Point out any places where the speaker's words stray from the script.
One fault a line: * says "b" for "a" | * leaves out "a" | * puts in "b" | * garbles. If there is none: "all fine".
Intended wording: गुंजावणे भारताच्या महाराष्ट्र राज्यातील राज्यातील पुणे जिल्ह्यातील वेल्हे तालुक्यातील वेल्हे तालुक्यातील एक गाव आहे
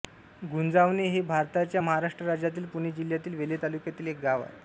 * puts in "हे"
* leaves out "राज्यातील"
* leaves out "वेल्हे तालुक्यातील"